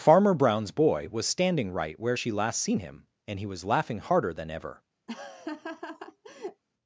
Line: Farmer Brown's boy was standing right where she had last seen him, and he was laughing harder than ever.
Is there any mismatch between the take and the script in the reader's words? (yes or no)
yes